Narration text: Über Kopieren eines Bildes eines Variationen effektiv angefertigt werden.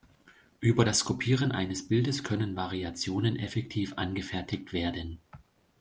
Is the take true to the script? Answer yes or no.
no